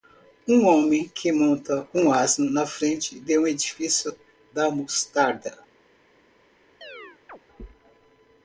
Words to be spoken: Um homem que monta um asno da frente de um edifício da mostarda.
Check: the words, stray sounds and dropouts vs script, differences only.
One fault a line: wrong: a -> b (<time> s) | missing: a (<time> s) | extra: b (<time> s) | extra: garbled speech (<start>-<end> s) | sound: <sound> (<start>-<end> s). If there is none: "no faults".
wrong: da -> na (2.5 s)
sound: chirp (6.8-7.4 s)